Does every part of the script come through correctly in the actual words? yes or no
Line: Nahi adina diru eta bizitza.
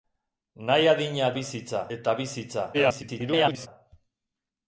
no